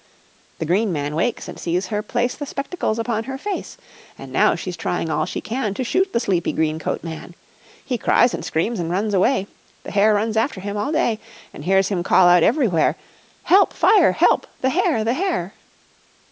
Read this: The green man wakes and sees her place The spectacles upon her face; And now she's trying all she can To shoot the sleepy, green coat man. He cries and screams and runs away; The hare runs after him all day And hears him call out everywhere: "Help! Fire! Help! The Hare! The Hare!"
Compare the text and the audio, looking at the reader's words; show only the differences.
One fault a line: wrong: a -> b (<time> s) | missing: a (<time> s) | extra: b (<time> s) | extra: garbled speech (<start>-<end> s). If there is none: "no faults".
no faults